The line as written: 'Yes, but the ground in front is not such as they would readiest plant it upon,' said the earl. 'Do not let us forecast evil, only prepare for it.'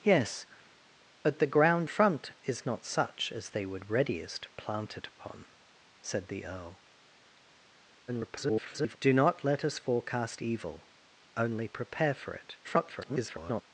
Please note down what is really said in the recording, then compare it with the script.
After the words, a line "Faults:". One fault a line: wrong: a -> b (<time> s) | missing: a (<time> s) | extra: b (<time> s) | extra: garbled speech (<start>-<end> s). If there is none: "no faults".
'Yes, but the ground front is not such as they would readiest plant it upon,' said the earl. [garbled] 'Do not let us forecast evil, only prepare for it.' [garbled]
Faults:
missing: in (1.9 s)
extra: garbled speech (8.1-9.0 s)
extra: garbled speech (12.6-13.6 s)